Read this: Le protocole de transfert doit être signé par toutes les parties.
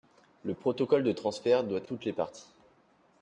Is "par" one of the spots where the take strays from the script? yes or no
yes